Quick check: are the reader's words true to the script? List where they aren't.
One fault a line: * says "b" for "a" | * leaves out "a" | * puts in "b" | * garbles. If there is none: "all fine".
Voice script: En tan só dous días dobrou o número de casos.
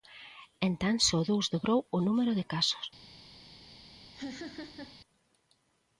* leaves out "días"